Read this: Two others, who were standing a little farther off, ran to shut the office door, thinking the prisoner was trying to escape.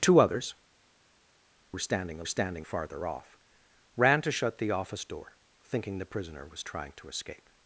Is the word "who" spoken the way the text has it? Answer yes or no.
no